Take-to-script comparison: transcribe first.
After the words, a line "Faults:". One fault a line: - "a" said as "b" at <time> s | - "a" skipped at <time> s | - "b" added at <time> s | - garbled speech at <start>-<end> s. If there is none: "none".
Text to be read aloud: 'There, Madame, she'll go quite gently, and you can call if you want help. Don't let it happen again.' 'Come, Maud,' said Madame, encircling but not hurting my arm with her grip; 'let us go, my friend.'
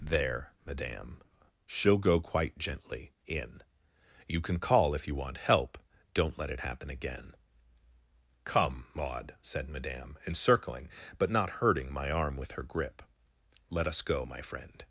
'There, Madame, she'll go quite gently, in you can call if you want help. Don't let it happen again.' 'Come, Maud,' said Madame, encircling but not hurting my arm with her grip; 'let us go, my friend.'
Faults:
- "and" said as "in" at 3.3 s